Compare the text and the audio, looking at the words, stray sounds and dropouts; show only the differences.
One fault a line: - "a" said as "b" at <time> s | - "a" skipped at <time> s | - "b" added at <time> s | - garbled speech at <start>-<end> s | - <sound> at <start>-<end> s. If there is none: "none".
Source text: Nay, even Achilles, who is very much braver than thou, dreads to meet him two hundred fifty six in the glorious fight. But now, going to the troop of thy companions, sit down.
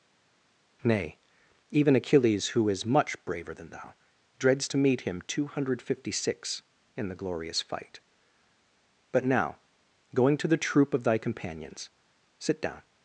- "very" skipped at 2.9 s